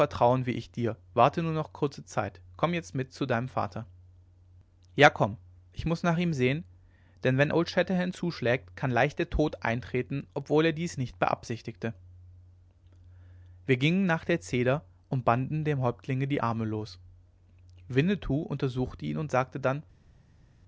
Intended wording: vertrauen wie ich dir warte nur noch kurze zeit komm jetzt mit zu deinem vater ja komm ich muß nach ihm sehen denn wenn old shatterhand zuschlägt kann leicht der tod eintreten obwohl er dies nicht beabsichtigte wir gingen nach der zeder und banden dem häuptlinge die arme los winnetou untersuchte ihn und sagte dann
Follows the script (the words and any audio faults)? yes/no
yes